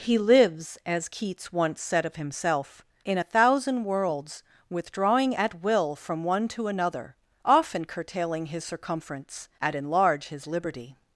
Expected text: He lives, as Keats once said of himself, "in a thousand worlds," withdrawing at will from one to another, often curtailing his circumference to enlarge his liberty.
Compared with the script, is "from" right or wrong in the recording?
right